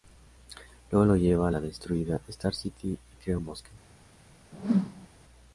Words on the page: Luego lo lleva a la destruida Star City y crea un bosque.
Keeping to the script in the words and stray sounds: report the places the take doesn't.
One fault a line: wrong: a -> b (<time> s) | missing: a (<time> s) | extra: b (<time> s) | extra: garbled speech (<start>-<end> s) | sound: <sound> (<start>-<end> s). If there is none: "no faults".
sound: whoosh (4.5-5.1 s)